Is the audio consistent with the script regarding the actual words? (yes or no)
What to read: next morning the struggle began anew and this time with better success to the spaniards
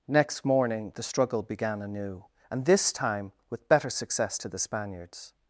yes